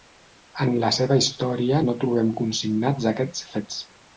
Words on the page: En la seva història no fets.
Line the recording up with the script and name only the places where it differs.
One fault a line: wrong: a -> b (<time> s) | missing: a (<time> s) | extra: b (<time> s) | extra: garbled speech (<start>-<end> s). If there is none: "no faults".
extra: trobem consignats aquests (2.0 s)